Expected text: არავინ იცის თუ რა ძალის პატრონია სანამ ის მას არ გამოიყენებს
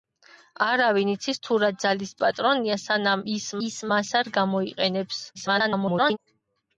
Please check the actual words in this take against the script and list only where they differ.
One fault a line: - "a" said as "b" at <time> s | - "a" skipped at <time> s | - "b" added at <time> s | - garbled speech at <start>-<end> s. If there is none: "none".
- "ის" added at 3.7 s
- garbled speech at 5.3-6.2 s